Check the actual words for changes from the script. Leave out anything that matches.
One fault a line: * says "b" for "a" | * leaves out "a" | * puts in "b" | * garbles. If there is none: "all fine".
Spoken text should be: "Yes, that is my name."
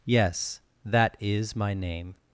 all fine